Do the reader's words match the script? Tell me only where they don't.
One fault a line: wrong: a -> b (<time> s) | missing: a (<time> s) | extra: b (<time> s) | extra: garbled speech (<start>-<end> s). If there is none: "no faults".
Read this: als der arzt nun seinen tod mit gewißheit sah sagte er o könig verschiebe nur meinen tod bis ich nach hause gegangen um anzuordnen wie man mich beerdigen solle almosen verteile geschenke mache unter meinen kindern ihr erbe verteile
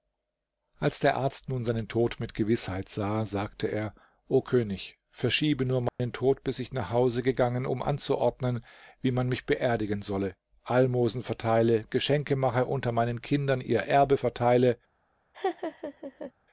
no faults